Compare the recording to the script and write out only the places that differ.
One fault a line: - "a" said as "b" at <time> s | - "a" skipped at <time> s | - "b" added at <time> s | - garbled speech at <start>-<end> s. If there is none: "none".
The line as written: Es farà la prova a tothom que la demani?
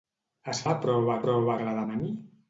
- "farà" skipped at 0.6 s
- "tothom" said as "prova" at 1.2 s